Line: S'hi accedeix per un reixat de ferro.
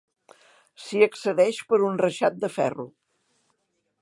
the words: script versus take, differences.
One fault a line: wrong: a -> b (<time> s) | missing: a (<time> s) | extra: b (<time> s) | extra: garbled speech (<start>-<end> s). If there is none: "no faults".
no faults